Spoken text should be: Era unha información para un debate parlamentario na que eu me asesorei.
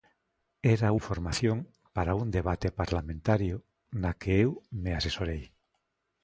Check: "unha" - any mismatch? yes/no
yes